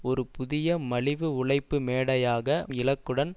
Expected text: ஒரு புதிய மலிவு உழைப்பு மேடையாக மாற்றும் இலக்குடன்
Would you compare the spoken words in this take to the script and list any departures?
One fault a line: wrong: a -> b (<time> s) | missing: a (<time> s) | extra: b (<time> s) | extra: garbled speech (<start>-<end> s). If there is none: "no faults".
missing: மாற்றும் (2.5 s)